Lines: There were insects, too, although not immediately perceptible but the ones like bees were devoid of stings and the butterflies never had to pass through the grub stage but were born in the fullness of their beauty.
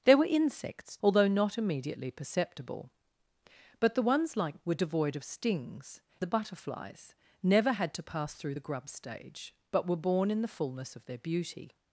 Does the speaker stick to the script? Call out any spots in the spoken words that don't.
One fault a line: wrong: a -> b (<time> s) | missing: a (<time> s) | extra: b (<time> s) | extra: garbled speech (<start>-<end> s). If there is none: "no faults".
missing: too (1.0 s)
missing: bees (4.6 s)
missing: and (6.0 s)